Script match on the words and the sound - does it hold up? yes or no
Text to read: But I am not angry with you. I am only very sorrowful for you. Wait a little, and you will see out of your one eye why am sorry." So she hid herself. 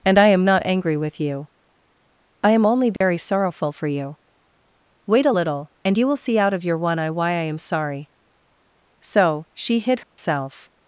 no